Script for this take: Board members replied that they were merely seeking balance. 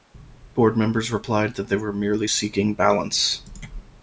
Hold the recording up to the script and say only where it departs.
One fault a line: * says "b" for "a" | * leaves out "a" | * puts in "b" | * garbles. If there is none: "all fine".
all fine